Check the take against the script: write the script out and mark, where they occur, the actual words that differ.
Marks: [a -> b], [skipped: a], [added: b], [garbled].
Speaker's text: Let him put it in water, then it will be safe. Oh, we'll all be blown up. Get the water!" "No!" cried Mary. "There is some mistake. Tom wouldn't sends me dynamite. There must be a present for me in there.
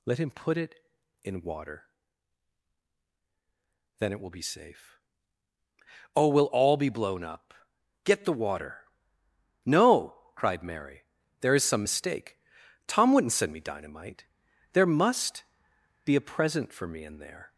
Let him put it in water, then it will be safe. Oh, we'll all be blown up. Get the water!" "No!" cried Mary. "There is some mistake. Tom wouldn't [sends -> send] me dynamite. There must be a present for me in there.